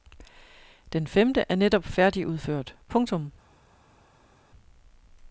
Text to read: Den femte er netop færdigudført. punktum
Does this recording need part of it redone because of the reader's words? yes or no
no